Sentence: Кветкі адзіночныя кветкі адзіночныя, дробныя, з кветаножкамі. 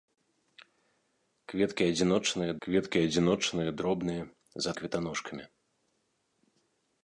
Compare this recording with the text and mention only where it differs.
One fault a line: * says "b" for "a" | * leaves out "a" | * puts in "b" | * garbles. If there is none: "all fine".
all fine